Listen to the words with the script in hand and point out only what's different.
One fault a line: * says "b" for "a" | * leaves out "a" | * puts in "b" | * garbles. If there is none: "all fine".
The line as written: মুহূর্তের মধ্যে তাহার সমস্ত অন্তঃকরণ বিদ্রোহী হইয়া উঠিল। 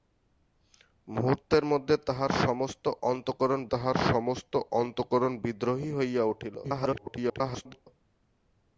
* puts in "তাহার সমস্ত অন্তঃকরণ"
* garbles